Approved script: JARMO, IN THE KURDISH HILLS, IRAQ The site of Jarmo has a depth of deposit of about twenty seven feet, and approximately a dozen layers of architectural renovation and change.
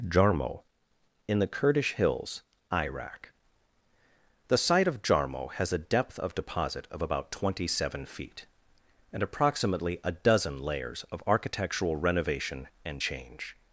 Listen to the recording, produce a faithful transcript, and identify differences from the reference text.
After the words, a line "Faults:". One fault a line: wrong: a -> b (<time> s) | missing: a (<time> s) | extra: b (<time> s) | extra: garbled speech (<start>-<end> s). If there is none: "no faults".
JARMO, IN THE KURDISH HILLS, IRAQ The site of Jarmo has a depth of deposit of about twenty seven feet, and approximately a dozen layers of architectural renovation and change.
Faults:
no faults